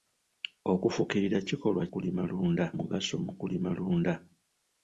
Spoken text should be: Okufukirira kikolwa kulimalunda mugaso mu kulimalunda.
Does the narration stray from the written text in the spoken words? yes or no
no